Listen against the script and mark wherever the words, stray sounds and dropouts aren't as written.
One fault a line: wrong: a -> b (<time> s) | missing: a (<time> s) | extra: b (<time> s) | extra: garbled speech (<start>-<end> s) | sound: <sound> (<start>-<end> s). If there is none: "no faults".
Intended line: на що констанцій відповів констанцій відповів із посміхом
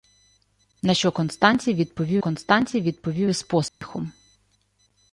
sound: dropout (3.7-3.8 s)